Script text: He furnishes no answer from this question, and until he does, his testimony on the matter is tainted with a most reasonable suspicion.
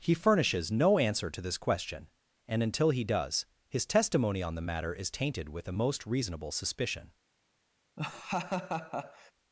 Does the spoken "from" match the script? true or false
false